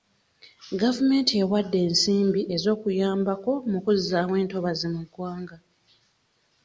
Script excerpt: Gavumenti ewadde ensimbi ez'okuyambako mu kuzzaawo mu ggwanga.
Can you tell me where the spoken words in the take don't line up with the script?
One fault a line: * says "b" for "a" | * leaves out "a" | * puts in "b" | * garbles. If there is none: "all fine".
* puts in "entobazi"